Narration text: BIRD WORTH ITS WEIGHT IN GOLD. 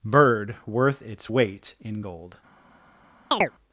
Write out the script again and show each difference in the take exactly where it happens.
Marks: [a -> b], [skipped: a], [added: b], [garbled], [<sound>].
BIRD WORTH ITS WEIGHT IN GOLD. [chirp]